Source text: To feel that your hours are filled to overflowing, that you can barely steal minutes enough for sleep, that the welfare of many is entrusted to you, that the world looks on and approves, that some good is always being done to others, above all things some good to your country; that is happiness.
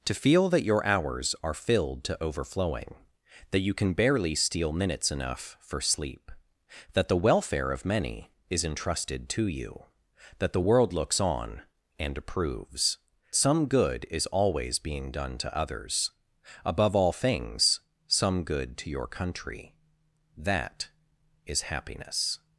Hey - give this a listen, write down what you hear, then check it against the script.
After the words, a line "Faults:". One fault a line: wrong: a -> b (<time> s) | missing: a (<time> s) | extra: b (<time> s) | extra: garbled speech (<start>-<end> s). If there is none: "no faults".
To feel that your hours are filled to overflowing, that you can barely steal minutes enough for sleep, that the welfare of many is entrusted to you, that the world looks on and approves, some good is always being done to others, above all things some good to your country; that is happiness.
Faults:
missing: that (13.0 s)